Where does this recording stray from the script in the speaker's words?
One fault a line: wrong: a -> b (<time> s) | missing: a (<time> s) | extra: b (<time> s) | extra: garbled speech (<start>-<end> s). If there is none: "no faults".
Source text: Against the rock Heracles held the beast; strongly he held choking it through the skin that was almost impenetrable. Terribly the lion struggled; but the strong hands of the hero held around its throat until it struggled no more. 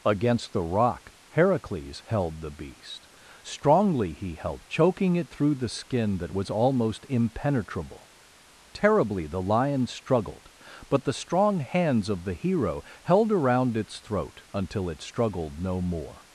no faults